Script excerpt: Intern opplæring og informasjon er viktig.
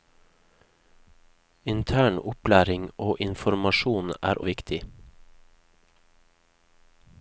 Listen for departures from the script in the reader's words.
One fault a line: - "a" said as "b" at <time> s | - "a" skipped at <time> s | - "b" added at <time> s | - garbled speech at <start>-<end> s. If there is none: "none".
none